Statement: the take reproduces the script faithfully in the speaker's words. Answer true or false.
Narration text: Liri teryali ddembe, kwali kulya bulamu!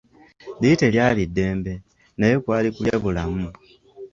false